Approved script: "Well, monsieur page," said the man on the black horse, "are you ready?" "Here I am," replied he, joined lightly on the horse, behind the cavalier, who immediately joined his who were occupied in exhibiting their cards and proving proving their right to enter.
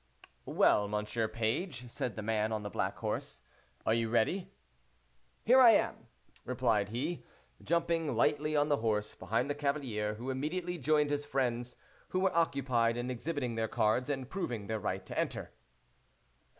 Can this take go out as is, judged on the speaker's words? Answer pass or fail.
fail